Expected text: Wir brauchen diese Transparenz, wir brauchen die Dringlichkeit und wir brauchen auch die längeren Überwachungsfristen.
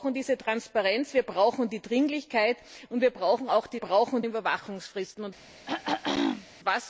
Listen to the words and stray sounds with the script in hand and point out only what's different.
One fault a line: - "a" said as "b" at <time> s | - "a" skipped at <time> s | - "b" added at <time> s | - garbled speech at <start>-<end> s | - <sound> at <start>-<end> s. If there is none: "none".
- "längeren" said as "brauchen" at 3.8 s
- throat clearing at 5.7-6.5 s